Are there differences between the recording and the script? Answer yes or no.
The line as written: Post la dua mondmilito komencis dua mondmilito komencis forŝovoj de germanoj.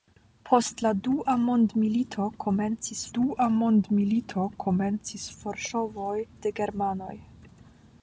no